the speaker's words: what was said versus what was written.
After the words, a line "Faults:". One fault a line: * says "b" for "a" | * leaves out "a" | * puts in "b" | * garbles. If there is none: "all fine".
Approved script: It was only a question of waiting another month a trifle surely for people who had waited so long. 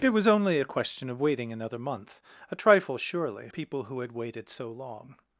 It was only a question of waiting another month a trifle surely people who had waited so long.
Faults:
* leaves out "for"